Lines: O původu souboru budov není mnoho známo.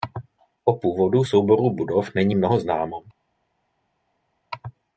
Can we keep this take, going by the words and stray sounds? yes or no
yes